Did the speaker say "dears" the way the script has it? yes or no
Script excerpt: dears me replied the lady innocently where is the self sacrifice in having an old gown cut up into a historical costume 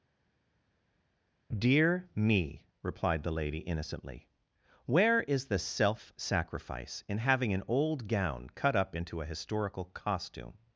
no